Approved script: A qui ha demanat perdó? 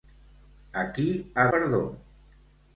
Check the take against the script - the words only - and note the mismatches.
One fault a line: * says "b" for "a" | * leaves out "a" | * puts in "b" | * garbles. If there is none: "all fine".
* leaves out "demanat"